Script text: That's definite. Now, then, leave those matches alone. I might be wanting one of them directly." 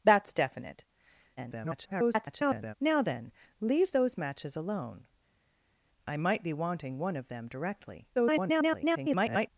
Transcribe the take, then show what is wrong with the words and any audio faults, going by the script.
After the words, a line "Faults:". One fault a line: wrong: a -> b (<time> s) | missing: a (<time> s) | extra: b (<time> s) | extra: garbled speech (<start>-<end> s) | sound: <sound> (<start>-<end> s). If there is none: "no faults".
That's definite. [garbled] Now, then, leave those matches alone. I might be wanting one of them directly." [garbled]
Faults:
extra: garbled speech (1.4-2.7 s)
extra: garbled speech (8.1-9.5 s)